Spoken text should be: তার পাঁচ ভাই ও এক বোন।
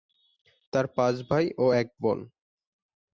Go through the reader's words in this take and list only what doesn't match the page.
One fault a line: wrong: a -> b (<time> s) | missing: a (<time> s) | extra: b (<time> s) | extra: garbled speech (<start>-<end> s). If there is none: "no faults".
no faults